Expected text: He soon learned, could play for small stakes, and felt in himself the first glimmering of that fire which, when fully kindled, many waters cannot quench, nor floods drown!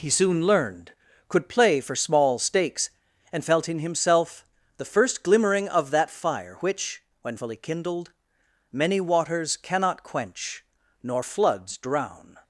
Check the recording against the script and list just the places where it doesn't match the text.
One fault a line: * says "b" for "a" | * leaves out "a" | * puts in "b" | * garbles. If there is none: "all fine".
all fine